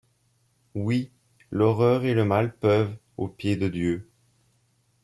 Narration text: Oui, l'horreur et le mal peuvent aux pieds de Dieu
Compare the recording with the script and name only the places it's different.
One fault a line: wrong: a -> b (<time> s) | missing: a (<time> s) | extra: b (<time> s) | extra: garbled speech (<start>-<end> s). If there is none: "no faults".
no faults